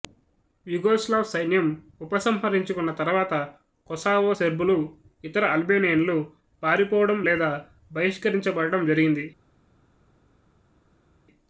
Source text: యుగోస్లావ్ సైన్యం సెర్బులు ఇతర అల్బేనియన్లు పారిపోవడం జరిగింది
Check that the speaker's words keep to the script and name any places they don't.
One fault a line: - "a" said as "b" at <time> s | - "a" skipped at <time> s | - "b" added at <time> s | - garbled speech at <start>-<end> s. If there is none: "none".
- "ఉపసంహరించుకున్న తరువాత కొసావో" added at 2.0 s
- "లేదా బహిష్కరించబడడం" added at 7.2 s